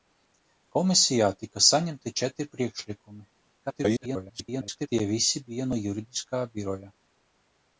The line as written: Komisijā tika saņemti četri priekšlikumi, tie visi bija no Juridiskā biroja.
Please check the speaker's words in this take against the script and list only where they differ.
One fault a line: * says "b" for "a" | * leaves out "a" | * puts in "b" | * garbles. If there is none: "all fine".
* garbles